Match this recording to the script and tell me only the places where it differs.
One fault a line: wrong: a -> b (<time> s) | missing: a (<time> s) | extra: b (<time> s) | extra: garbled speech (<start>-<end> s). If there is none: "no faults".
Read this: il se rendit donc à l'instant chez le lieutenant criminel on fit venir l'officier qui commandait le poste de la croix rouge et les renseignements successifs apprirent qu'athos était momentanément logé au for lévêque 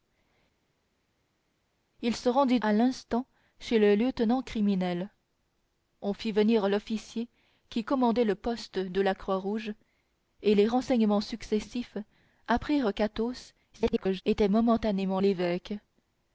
missing: donc (2.6 s)
extra: garbled speech (13.7-14.2 s)
missing: logé au for (15.2 s)